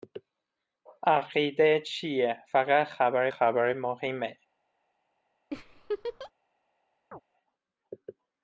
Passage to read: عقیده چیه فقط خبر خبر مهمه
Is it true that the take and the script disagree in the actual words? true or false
false